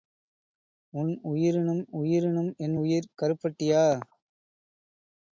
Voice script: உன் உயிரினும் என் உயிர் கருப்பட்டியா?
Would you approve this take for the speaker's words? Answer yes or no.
no